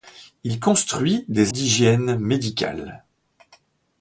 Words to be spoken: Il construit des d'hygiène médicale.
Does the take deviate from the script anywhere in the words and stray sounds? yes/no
no